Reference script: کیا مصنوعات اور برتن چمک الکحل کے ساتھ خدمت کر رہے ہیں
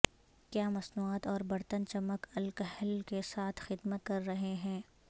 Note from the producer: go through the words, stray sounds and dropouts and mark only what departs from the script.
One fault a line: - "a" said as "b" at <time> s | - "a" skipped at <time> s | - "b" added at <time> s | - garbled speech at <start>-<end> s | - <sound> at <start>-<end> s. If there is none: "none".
none